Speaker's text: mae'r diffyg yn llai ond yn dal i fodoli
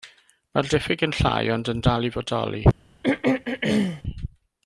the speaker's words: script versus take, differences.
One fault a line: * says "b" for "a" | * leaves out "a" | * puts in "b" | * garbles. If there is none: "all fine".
all fine